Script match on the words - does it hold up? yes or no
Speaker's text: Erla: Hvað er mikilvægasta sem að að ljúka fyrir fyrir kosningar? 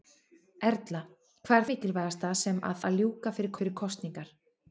yes